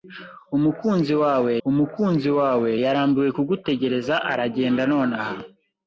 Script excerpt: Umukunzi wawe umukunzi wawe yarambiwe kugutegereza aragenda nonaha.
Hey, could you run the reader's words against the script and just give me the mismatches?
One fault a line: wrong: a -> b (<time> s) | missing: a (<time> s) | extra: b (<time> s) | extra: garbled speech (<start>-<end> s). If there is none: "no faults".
no faults